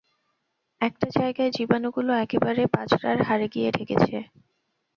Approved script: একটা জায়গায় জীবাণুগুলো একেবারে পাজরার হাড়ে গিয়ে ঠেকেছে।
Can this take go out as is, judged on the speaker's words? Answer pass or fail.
pass